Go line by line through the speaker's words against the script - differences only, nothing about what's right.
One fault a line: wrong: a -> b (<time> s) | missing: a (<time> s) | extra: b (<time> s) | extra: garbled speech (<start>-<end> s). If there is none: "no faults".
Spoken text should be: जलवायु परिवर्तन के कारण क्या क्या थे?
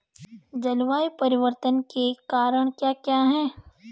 wrong: थे -> हैं (3.2 s)